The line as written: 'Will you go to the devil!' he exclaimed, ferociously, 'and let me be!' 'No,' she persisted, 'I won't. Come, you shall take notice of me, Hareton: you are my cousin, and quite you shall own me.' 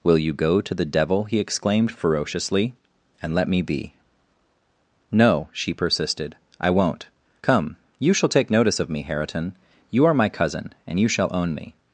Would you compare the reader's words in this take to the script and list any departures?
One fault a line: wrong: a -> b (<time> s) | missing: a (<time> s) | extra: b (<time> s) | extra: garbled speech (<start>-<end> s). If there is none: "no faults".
missing: quite (11.0 s)